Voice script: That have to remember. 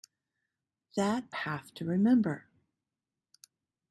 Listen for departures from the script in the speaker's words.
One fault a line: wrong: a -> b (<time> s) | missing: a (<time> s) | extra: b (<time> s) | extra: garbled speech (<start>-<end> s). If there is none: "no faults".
no faults